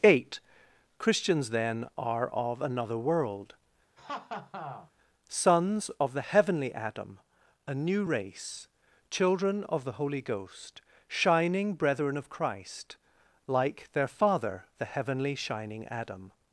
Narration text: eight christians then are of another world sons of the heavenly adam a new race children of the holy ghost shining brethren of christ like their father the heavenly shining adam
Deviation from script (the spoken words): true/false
false